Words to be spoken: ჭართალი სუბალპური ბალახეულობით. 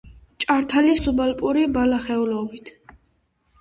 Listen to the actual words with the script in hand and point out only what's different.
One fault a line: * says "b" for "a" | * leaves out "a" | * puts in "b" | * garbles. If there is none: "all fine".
all fine